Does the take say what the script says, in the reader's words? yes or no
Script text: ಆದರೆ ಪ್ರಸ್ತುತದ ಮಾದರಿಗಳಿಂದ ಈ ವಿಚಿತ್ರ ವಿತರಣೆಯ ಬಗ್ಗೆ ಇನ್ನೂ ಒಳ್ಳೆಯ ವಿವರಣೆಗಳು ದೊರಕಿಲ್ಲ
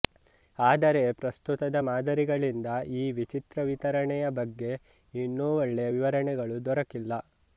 yes